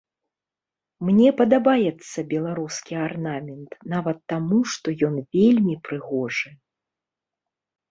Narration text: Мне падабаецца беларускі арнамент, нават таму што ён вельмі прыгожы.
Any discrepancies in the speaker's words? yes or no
no